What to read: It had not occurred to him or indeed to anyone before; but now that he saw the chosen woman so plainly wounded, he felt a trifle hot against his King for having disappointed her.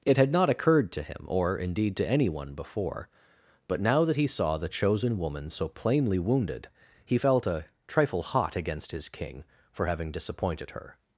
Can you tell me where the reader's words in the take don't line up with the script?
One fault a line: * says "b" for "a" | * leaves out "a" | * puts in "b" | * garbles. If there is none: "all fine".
all fine